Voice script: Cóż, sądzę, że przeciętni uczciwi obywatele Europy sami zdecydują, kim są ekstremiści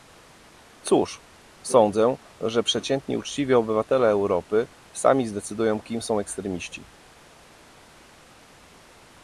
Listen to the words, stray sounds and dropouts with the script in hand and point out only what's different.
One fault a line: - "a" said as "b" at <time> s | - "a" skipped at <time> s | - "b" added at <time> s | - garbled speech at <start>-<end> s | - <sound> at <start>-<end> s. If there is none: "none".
none